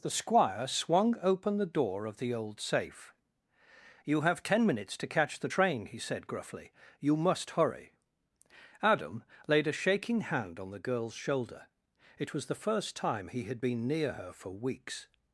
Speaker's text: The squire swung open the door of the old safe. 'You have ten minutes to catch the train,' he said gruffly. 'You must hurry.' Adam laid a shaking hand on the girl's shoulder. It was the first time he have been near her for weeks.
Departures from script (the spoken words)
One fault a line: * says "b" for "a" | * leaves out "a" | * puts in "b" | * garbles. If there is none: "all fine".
* says "had" for "have"